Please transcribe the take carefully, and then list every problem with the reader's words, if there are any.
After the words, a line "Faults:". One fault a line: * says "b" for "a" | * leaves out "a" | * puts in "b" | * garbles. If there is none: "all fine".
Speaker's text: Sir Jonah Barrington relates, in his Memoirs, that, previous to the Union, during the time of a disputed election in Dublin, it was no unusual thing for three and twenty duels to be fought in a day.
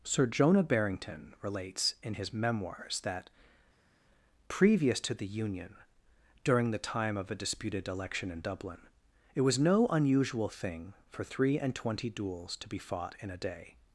Sir Jonah Barrington relates, in his Memoirs, that, previous to the Union, during the time of a disputed election in Dublin, it was no unusual thing for three and twenty duels to be fought in a day.
Faults:
all fine